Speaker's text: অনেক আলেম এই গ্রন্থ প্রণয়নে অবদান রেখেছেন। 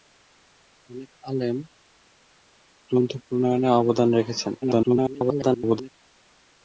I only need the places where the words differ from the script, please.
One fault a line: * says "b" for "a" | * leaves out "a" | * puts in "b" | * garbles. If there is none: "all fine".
* leaves out "এই"
* garbles